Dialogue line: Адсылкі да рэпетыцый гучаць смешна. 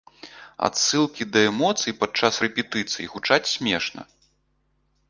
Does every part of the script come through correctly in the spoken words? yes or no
no